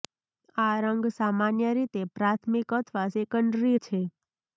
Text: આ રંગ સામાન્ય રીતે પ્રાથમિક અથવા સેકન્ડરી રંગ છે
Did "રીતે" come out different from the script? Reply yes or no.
no